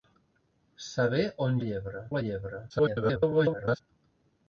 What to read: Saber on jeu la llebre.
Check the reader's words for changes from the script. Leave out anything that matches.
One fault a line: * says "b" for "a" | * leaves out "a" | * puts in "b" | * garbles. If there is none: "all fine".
* says "llebre" for "jeu"
* garbles